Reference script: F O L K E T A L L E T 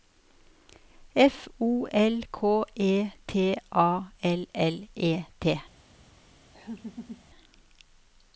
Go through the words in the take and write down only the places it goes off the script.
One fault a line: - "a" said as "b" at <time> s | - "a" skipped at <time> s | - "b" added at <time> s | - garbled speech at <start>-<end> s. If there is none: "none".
none